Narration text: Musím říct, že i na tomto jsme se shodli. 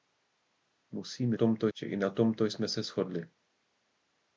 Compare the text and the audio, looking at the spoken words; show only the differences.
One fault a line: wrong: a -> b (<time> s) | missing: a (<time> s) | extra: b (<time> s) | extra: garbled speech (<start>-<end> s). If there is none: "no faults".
wrong: říct -> tomto (1.3 s)